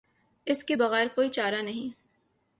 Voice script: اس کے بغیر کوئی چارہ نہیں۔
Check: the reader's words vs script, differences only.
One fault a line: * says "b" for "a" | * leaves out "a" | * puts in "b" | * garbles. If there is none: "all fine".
all fine